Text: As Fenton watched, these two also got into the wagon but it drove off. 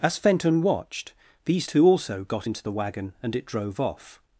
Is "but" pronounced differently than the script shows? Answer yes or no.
yes